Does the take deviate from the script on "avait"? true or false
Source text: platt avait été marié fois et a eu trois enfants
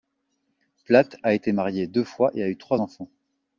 true